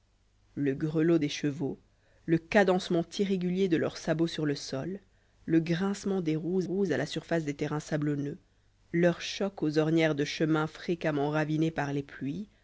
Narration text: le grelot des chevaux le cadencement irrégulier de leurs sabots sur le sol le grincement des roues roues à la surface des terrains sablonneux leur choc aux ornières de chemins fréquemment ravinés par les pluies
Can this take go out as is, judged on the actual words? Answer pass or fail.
pass